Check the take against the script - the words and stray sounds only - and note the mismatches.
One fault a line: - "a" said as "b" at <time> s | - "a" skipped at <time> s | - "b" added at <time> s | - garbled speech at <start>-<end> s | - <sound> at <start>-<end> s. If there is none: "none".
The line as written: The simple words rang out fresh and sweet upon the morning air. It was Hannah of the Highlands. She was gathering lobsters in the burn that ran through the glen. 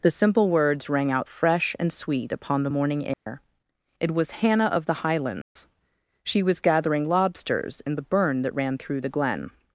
- dropout at 3.1-3.3 s
- dropout at 5.4-5.6 s